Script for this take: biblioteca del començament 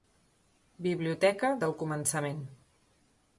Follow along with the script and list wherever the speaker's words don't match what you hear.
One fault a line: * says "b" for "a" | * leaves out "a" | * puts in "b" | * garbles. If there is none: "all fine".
all fine